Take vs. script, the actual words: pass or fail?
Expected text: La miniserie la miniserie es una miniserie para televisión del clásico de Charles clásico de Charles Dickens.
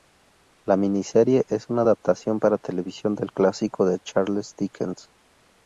fail